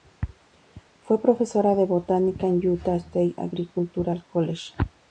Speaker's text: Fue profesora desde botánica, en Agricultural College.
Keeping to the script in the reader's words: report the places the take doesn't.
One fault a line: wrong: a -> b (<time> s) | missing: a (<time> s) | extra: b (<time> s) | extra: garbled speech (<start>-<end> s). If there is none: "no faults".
wrong: desde -> de (1.8 s)
extra: Utah State (2.7 s)